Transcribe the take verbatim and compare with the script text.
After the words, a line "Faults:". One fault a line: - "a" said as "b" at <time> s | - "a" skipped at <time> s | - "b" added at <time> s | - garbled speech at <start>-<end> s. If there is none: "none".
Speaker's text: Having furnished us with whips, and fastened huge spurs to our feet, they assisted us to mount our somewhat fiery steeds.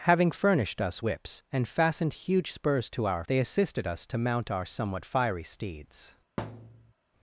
Having furnished us whips, and fastened huge spurs to our they assisted us to mount our somewhat fiery steeds.
Faults:
- "with" skipped at 1.1 s
- "feet" skipped at 3.3 s